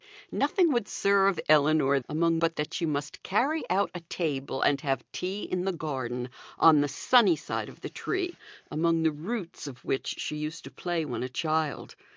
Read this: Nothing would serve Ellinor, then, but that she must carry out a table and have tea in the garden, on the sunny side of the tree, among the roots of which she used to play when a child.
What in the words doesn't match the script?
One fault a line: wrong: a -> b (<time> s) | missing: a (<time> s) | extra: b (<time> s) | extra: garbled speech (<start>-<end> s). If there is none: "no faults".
wrong: then -> among (2.1 s)